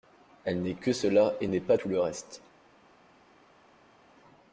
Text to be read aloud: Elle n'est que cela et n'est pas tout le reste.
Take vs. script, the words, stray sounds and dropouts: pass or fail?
pass